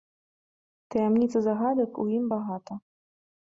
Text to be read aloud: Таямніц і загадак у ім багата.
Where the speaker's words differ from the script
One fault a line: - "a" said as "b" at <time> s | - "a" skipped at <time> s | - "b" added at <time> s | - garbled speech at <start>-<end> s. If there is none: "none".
none